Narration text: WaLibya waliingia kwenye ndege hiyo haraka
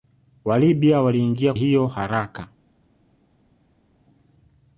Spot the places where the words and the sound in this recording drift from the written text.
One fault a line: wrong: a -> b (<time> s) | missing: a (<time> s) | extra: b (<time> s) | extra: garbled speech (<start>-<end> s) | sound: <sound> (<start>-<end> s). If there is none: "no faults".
missing: kwenye ndege (1.5 s)